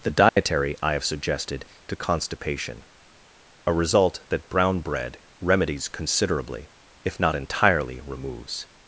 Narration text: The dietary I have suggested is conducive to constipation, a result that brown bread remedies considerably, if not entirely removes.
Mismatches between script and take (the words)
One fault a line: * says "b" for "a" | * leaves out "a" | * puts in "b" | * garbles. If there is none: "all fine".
* leaves out "is conducive"